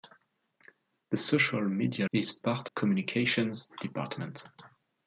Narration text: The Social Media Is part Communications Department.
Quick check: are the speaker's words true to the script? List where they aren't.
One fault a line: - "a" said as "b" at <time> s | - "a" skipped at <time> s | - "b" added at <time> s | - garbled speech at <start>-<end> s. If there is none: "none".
none